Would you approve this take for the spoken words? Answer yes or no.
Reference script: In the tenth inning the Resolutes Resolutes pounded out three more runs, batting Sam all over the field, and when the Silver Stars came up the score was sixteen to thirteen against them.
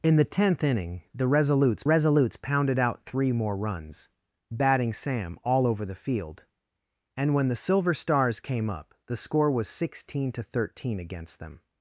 yes